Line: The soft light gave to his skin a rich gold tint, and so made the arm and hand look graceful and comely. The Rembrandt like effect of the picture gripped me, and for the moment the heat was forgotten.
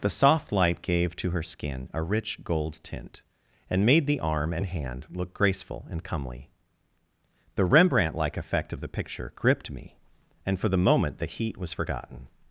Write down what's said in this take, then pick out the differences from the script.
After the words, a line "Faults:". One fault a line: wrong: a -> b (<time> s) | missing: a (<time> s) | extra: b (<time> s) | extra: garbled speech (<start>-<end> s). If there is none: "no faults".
The soft light gave to her skin a rich gold tint, and made the arm and hand look graceful and comely. The Rembrandt like effect of the picture gripped me, and for the moment the heat was forgotten.
Faults:
wrong: his -> her (1.3 s)
missing: so (3.8 s)